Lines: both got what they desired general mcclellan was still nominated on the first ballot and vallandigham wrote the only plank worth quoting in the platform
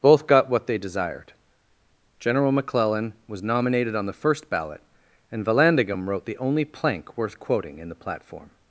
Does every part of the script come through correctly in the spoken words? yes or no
no